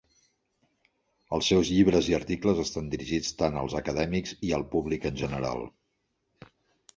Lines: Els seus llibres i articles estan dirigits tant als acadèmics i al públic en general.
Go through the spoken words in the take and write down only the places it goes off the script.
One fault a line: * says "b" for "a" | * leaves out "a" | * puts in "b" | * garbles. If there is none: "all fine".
all fine